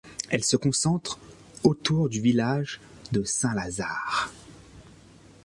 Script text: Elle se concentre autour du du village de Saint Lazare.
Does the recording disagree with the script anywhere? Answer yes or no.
yes